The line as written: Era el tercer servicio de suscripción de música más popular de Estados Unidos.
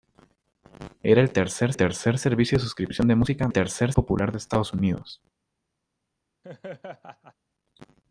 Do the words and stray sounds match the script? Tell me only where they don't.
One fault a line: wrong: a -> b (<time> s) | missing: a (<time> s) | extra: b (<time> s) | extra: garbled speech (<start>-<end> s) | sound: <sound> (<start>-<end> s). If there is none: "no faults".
extra: tercer (1.7 s)
wrong: más -> tercer (3.5 s)
sound: laugh (6.4-7.3 s)